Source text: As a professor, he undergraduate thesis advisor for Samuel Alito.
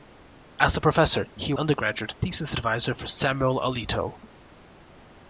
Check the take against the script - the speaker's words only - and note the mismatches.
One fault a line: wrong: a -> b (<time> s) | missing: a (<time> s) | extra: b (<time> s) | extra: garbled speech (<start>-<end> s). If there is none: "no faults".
no faults